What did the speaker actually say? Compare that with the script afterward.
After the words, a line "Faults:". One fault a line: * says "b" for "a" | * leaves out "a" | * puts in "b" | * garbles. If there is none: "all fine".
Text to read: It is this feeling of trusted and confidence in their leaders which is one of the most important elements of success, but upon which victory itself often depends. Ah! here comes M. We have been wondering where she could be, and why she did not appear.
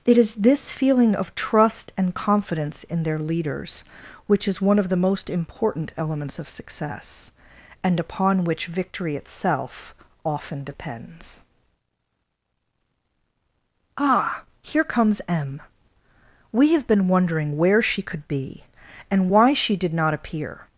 It is this feeling of trust and confidence in their leaders which is one of the most important elements of success, and upon which victory itself often depends. Ah! here comes M. We have been wondering where she could be, and why she did not appear.
Faults:
* says "trust" for "trusted"
* says "and" for "but"